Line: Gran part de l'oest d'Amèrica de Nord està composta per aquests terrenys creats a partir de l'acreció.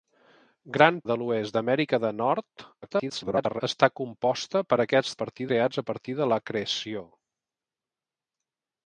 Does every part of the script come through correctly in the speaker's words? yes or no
no